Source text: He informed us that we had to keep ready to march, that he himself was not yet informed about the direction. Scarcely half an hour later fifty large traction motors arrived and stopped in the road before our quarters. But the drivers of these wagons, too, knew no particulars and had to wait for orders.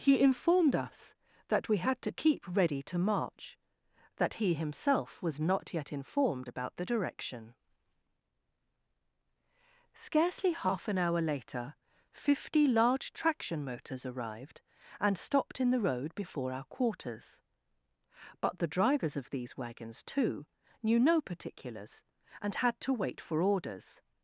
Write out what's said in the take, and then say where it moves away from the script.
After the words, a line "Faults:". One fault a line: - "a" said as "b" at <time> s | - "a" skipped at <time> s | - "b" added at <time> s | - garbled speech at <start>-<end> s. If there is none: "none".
He informed us that we had to keep ready to march, that he himself was not yet informed about the direction. Scarcely half an hour later fifty large traction motors arrived and stopped in the road before our quarters. But the drivers of these wagons, too, knew no particulars and had to wait for orders.
Faults:
none